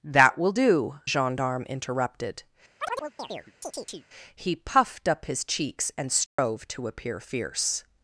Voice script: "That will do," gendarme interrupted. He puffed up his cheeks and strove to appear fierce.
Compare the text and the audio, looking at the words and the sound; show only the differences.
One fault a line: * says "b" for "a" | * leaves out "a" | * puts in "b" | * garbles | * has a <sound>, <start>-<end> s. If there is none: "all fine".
* has a chirp, 2.8-4.1 s
* has a dropout, 6.3-6.4 s